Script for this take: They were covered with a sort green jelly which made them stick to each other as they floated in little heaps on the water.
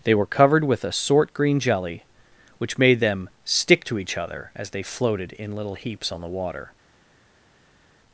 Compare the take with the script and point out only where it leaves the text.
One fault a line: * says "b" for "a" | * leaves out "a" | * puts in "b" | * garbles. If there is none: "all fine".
all fine